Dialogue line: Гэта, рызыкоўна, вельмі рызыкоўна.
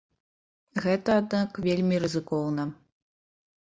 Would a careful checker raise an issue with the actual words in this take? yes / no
yes